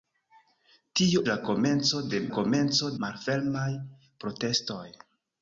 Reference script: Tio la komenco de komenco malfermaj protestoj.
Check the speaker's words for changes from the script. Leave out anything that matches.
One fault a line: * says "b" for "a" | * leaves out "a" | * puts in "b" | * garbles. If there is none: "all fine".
all fine